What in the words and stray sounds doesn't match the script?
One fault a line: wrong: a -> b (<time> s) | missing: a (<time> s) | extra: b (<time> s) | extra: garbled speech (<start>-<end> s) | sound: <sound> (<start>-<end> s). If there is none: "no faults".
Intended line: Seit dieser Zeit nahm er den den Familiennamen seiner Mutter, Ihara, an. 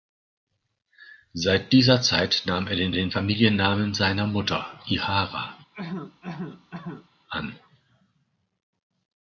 sound: cough (5.7-7.1 s)